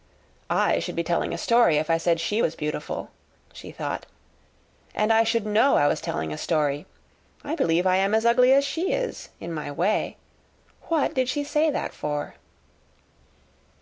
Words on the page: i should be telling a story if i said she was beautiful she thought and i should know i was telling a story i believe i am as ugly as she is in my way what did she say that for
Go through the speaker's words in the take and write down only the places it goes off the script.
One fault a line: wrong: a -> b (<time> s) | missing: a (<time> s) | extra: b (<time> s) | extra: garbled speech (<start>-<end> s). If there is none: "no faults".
no faults